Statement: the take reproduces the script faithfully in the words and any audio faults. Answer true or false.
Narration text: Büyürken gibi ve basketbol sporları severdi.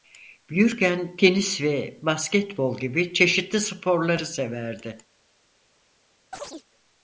false